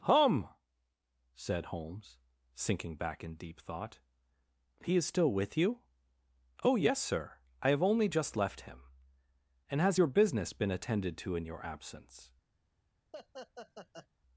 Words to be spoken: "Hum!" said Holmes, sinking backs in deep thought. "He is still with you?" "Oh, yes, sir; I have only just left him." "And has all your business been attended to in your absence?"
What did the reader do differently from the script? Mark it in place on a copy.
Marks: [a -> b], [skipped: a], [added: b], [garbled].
"Hum!" said Holmes, sinking [backs -> back] in deep thought. "He is still with you?" "Oh, yes, sir; I have only just left him." "And has [skipped: all] your business been attended to in your absence?"